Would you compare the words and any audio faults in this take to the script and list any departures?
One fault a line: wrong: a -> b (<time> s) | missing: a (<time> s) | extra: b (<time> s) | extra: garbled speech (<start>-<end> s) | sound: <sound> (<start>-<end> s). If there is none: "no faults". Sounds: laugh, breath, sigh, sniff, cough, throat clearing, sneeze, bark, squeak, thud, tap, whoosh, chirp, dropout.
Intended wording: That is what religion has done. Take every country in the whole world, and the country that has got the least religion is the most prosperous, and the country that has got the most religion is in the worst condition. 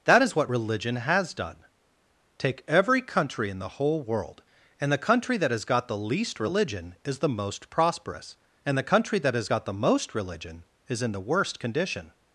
no faults